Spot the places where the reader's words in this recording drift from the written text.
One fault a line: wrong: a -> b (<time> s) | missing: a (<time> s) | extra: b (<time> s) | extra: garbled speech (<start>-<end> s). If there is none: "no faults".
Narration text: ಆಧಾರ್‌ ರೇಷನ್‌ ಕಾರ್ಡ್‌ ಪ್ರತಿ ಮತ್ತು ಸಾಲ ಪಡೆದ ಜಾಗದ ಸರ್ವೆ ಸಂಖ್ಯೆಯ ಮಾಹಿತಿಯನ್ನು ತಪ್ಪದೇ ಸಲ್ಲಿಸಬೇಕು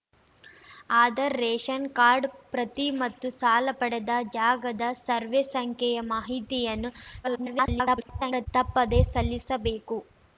extra: garbled speech (7.2-8.5 s)